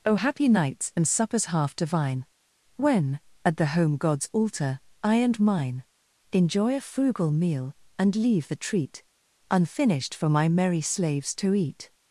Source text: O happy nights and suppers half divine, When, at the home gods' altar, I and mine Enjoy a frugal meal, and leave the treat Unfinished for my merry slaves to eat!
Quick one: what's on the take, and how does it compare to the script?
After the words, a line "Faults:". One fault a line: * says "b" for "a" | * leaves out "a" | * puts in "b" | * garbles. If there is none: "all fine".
O happy nights and suppers half divine, When, at the home gods' altar, I and mine Enjoy a frugal meal, and leave the treat Unfinished for my merry slaves to eat!
Faults:
all fine